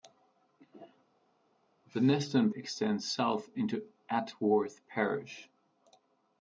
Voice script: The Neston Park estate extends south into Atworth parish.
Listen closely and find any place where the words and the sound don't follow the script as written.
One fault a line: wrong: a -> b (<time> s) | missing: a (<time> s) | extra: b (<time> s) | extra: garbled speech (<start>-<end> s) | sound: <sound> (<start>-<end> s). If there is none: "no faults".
missing: Park estate (2.5 s)